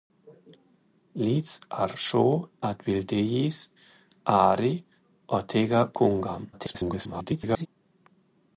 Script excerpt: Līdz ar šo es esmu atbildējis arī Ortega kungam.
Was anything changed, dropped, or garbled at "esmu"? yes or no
yes